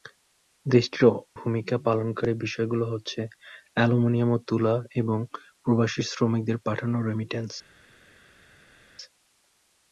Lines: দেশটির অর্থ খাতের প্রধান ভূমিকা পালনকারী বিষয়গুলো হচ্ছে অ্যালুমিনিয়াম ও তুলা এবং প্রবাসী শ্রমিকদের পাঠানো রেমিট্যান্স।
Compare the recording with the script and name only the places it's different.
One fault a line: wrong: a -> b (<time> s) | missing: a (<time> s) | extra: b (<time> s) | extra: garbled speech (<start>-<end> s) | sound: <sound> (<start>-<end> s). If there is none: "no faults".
missing: অর্থ খাতের প্রধান (1.0 s)